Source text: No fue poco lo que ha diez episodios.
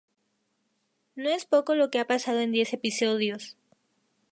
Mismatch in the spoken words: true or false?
true